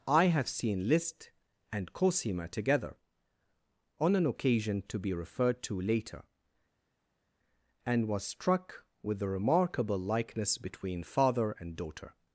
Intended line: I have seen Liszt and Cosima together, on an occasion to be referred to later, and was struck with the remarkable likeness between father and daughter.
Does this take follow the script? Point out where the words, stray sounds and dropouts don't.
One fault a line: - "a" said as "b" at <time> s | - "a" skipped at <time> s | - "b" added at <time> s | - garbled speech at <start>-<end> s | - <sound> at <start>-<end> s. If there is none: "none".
none